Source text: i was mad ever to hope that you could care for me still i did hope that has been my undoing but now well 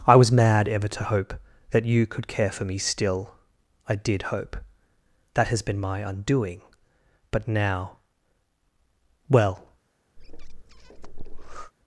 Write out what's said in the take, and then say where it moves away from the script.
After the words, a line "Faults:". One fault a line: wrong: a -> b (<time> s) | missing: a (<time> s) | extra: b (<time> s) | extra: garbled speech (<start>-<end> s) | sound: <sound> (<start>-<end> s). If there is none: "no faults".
i was mad ever to hope that you could care for me still i did hope that has been my undoing but now well
Faults:
sound: breath (10.2-11.7 s)